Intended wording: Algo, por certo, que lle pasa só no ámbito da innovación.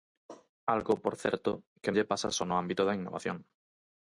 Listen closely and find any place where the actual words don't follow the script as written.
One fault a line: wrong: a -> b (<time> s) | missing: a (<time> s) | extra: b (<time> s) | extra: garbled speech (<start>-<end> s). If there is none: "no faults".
no faults